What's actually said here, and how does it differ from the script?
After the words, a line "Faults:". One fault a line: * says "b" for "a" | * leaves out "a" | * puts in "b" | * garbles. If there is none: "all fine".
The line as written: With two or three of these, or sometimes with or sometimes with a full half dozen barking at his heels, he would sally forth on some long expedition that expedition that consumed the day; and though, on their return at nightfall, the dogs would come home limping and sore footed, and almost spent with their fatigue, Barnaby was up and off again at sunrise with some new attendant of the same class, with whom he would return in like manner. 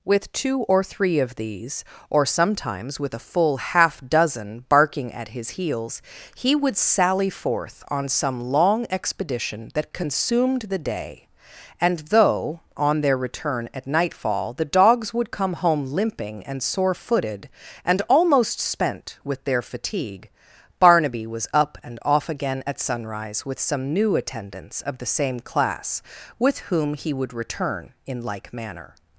With two or three of these, or sometimes with a full half dozen barking at his heels, he would sally forth on some long expedition that consumed the day; and though, on their return at nightfall, the dogs would come home limping and sore footed, and almost spent with their fatigue, Barnaby was up and off again at sunrise with some new attendants of the same class, with whom he would return in like manner.
Faults:
* leaves out "or sometimes with"
* leaves out "expedition that"
* says "attendants" for "attendant"